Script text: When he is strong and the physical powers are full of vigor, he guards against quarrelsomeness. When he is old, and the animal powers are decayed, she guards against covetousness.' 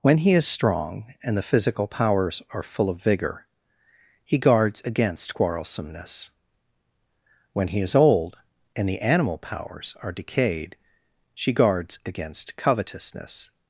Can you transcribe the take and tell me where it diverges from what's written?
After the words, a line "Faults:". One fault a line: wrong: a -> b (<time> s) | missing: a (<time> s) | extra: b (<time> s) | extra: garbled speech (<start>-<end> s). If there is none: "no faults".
When he is strong and the physical powers are full of vigor, he guards against quarrelsomeness. When he is old, and the animal powers are decayed, she guards against covetousness.'
Faults:
no faults